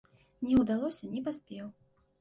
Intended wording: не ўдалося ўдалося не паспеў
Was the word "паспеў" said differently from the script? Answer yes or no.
no